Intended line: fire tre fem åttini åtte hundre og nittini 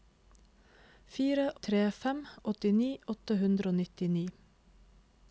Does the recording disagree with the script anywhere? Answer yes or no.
no